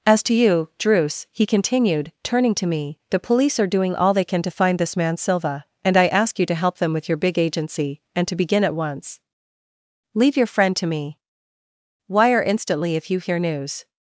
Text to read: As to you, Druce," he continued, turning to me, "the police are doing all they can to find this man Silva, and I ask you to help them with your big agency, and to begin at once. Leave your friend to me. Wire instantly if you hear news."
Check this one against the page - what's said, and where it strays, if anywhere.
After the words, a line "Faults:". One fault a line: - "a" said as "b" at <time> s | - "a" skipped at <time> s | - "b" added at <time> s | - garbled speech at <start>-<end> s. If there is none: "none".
As to you, Druce," he continued, turning to me, "the police are doing all they can to find this man Silva, and I ask you to help them with your big agency, and to begin at once. Leave your friend to me. Wire instantly if you hear news."
Faults:
none